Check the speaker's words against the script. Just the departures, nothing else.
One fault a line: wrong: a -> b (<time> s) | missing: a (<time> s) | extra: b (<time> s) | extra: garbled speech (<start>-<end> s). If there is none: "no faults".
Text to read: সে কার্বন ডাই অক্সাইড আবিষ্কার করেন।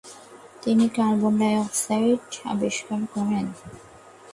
wrong: সে -> তিনি (0.6 s)